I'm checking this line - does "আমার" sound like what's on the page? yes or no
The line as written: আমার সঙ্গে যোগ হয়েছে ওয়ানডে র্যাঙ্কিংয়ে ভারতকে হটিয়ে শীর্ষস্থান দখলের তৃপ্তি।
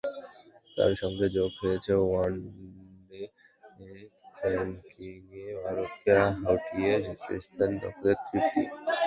no